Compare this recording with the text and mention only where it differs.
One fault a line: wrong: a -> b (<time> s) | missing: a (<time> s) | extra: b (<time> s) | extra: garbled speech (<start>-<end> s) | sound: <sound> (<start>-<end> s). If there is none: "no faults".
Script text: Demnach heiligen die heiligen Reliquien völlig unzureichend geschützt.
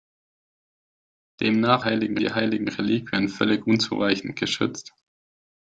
no faults